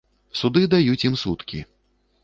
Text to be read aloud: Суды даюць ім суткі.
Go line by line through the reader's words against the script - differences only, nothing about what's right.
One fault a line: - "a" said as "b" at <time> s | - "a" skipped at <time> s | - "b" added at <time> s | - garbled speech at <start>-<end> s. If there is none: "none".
none